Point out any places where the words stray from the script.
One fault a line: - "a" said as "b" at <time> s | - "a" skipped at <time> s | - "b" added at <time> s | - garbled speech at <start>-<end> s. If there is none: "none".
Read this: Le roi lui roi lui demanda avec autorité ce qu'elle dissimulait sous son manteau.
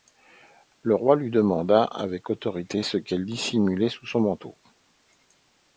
- "roi lui" skipped at 1.3 s